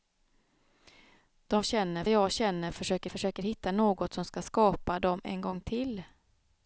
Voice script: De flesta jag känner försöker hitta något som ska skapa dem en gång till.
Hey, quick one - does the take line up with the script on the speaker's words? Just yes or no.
no